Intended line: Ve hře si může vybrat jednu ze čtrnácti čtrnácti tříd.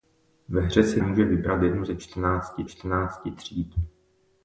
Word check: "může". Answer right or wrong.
right